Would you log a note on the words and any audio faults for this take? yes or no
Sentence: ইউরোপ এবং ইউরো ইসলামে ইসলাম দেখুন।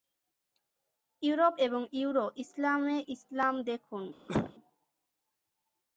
yes